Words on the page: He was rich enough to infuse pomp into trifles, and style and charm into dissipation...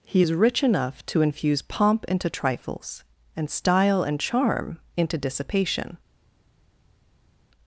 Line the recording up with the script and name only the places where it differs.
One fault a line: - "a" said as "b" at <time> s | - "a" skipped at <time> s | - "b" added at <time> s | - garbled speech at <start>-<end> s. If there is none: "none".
- "was" said as "is" at 0.2 s